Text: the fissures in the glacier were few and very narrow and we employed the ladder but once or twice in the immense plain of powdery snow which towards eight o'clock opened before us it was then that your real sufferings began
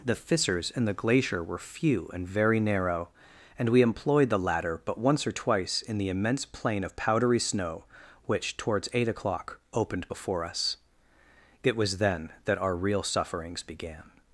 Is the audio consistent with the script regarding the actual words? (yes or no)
no